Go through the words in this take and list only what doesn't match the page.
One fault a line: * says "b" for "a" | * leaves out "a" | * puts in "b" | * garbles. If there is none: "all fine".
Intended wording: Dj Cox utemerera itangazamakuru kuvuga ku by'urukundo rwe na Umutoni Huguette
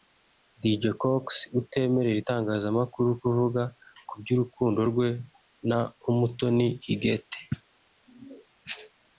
all fine